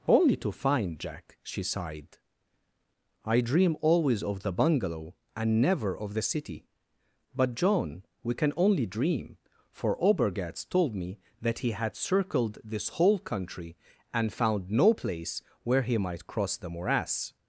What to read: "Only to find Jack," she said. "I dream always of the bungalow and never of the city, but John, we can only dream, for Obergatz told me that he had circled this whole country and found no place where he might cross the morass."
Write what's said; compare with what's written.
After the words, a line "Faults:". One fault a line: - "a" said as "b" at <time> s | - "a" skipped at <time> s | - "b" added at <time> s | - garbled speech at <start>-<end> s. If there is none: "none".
"Only to find Jack," she sighed. "I dream always of the bungalow and never of the city, but John, we can only dream, for Obergatz told me that he had circled this whole country and found no place where he might cross the morass."
Faults:
- "said" said as "sighed" at 1.6 s